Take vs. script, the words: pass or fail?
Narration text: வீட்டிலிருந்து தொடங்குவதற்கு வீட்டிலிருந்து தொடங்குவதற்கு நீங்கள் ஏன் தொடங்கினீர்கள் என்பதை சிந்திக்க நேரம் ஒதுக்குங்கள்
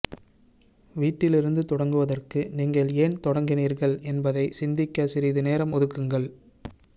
fail